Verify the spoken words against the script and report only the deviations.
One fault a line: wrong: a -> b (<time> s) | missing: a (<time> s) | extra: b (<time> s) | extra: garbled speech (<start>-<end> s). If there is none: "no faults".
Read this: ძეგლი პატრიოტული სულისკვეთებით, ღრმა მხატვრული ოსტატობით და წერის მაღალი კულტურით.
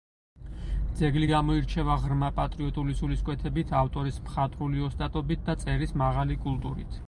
extra: გამოირჩევა ღრმა (1.3 s)
wrong: ღრმა -> ავტორის (3.8 s)